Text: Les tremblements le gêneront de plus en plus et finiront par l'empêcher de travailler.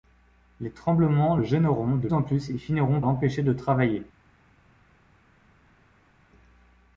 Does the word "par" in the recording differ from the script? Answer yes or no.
yes